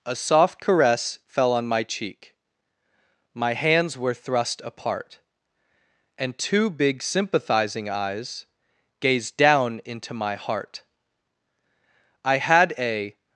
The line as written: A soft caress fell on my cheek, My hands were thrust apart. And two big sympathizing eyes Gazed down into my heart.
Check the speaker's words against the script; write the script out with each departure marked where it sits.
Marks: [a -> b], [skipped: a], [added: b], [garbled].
A soft caress fell on my cheek, My hands were thrust apart. And two big sympathizing eyes Gazed down into my heart. [added: I had a]